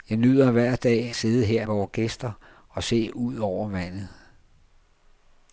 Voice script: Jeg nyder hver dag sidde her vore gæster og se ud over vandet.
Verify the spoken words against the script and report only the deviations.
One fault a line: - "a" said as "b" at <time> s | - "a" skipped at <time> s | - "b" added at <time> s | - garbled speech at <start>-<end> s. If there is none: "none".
none